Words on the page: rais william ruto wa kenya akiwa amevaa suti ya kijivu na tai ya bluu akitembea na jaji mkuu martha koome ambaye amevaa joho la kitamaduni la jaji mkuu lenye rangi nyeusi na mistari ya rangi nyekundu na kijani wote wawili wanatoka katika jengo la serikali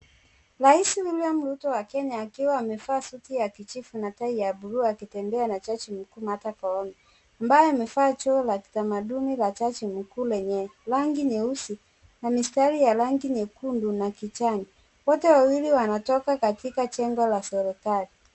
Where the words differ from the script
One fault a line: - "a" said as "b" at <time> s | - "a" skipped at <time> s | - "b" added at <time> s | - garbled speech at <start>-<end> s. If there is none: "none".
none